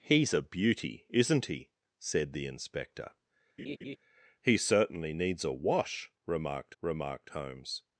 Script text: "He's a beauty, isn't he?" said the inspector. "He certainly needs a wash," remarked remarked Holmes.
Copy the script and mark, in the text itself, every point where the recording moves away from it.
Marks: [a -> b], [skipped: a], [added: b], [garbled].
"He's a beauty, isn't he?" said the inspector. "He certainly needs a wash," remarked remarked Holmes.